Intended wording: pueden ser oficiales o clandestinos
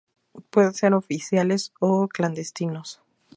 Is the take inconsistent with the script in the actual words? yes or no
no